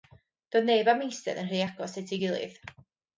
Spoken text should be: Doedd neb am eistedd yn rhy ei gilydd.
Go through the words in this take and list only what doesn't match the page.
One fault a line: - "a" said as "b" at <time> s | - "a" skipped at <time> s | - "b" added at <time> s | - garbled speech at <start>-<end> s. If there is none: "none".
- "agos at" added at 1.7 s